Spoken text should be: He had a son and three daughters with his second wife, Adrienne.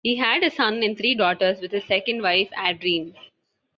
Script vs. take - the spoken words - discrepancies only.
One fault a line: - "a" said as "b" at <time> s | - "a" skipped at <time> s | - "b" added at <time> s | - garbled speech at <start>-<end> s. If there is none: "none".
none